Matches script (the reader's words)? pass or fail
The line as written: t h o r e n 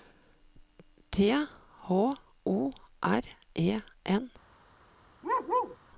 pass